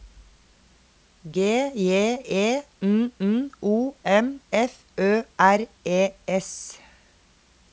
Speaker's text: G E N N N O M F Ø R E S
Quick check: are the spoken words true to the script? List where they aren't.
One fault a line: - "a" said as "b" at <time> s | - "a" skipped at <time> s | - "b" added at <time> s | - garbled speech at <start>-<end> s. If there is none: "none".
- "J" added at 1.8 s
- "N" skipped at 3.5 s